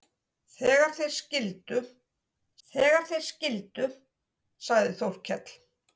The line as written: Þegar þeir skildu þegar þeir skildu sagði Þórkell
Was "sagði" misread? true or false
false